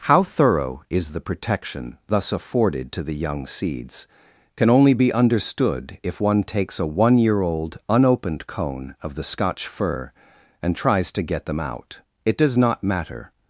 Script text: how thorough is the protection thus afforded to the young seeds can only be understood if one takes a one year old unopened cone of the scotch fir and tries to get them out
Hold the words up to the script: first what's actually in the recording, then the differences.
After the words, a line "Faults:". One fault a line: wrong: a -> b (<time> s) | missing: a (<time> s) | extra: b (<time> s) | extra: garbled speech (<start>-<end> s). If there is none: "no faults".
how thorough is the protection thus afforded to the young seeds can only be understood if one takes a one year old unopened cone of the scotch fir and tries to get them out it does not matter
Faults:
extra: it does not matter (12.3 s)